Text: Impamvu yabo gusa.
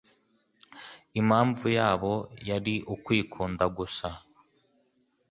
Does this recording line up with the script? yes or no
no